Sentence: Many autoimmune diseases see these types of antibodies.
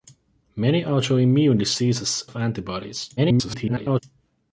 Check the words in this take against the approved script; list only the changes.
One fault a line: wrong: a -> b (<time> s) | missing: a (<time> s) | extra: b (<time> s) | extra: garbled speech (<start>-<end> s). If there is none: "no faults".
missing: see these types (2.2 s)
extra: garbled speech (3.2-4.0 s)